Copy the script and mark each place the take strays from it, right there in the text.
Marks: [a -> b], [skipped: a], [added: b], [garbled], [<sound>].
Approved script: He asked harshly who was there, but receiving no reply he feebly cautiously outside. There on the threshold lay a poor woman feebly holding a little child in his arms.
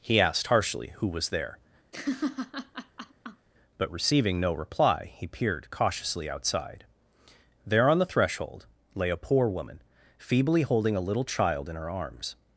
He asked harshly who was there, [laugh] but receiving no reply he [feebly -> peered] cautiously outside. There on the threshold lay a poor woman feebly holding a little child in [his -> her] arms.